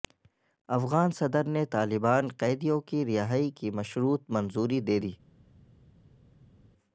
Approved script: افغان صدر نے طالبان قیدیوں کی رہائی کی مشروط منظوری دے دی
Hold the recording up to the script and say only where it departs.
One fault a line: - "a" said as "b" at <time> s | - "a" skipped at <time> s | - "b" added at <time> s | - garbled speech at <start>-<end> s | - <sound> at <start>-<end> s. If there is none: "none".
none